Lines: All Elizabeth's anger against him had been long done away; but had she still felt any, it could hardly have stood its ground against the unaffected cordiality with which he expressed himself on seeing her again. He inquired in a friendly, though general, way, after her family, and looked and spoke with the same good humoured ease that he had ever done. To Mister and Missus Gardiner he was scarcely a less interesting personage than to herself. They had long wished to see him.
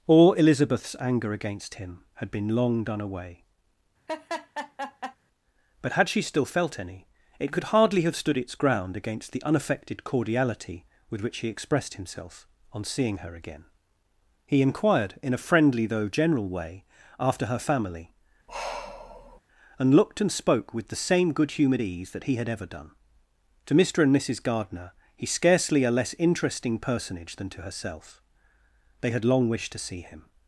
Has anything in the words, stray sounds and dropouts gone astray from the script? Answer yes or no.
yes